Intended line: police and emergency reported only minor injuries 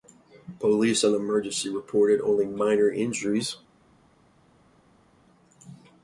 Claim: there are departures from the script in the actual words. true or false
false